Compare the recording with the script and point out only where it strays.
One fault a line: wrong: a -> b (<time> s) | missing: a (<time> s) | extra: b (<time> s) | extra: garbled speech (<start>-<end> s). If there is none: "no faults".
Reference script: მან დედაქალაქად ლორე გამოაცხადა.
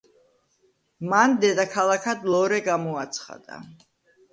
no faults